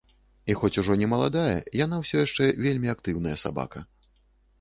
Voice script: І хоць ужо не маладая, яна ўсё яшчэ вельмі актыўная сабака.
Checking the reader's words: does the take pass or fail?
pass